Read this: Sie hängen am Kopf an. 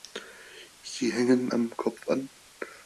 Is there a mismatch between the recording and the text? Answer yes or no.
no